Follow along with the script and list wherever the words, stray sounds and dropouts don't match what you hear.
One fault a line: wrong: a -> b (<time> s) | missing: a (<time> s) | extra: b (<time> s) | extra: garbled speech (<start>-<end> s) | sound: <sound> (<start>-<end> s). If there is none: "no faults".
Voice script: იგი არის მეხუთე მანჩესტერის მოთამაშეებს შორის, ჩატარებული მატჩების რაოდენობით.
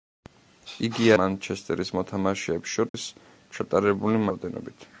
missing: არის მეხუთე (1.1 s)
sound: dropout (2.9-2.9 s)
missing: მატჩების (4.3 s)